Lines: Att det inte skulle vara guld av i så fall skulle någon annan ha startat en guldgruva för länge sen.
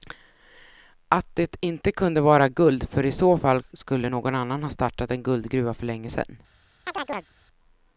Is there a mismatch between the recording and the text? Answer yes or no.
yes